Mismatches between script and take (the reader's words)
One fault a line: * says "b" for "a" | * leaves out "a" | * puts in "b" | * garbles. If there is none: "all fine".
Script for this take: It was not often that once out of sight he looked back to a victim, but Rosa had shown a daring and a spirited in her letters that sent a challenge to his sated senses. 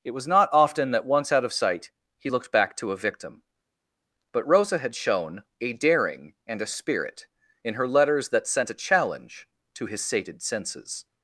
* says "spirit" for "spirited"